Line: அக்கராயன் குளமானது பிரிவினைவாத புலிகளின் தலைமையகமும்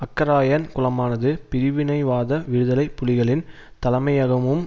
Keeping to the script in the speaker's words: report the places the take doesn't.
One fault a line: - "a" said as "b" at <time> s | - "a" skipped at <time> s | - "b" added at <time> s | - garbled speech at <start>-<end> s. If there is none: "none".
- "விடுதலை" added at 2.5 s